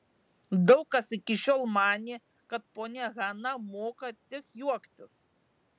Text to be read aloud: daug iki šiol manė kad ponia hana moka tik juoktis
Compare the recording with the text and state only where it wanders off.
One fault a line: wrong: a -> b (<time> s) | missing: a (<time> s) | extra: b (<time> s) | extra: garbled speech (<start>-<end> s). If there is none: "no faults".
extra: kas (0.9 s)